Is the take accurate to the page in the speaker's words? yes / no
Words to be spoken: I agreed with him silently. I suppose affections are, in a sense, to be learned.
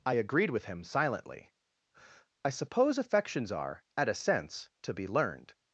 no